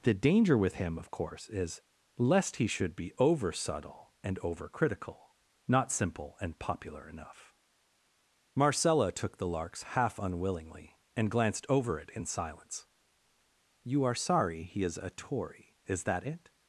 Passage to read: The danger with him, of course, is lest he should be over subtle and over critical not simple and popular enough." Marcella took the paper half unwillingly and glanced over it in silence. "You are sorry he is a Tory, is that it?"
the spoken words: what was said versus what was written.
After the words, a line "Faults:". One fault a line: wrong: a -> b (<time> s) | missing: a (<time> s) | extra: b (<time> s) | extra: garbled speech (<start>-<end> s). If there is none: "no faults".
The danger with him, of course, is lest he should be over subtle and over critical not simple and popular enough." Marcella took the larks half unwillingly and glanced over it in silence. "You are sorry he is a Tory, is that it?"
Faults:
wrong: paper -> larks (9.5 s)